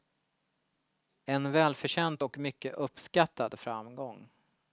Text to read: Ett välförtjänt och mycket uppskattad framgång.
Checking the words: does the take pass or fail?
fail